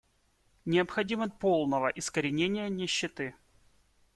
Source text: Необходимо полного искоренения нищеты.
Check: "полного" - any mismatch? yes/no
no